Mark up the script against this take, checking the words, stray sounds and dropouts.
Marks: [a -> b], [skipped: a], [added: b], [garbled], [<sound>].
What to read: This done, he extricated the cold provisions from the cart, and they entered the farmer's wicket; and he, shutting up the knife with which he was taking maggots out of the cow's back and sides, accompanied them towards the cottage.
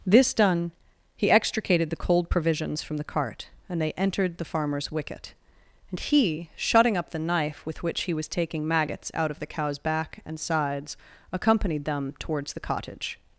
This done, he extricated the cold provisions from the cart, and they entered the farmer's wicket; and he, shutting up the knife with which he was taking maggots out of the cow's back and sides, accompanied them towards the cottage.